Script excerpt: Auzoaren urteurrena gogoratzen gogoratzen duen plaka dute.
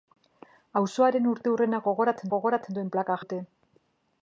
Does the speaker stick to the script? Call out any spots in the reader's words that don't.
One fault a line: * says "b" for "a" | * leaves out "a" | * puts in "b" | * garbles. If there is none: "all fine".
all fine